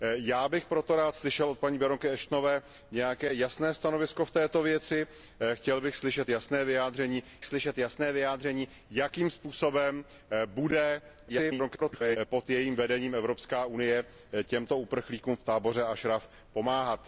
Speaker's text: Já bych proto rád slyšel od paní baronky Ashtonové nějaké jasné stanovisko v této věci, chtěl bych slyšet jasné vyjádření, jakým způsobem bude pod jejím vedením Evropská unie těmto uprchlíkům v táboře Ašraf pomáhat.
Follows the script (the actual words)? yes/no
no